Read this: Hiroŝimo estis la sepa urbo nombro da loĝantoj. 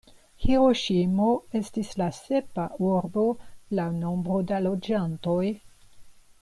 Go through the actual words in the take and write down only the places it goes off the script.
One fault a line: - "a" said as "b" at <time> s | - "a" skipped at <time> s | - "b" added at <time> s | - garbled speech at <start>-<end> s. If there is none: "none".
- "laŭ" added at 3.8 s